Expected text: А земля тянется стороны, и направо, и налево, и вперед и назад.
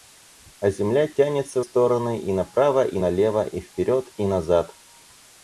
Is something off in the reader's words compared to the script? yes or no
no